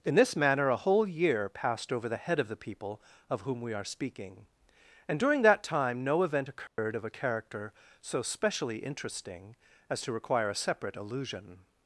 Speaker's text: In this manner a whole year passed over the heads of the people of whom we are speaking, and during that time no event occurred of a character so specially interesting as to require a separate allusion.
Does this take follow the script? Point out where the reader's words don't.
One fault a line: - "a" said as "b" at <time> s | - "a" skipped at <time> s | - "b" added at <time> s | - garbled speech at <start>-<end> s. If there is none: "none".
- "heads" said as "head" at 2.2 s